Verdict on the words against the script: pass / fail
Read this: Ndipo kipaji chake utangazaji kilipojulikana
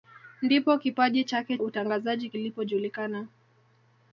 pass